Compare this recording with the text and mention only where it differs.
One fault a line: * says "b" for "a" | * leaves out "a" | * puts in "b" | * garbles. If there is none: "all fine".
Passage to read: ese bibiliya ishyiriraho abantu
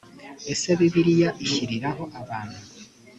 all fine